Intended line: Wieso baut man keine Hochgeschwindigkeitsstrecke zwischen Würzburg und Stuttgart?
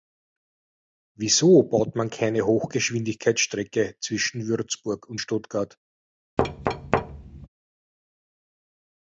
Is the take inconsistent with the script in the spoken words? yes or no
no